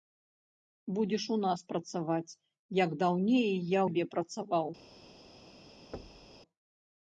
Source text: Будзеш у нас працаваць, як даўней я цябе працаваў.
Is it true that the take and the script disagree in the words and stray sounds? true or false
true